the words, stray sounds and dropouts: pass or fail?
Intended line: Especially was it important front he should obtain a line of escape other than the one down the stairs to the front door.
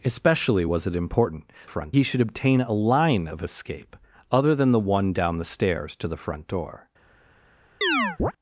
fail